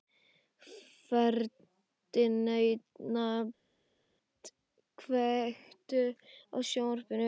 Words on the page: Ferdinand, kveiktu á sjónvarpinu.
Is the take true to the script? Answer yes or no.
yes